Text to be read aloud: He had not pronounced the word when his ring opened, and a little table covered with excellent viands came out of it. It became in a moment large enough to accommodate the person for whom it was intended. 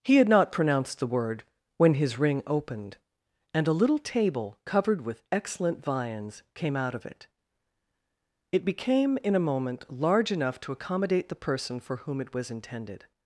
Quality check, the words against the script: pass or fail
pass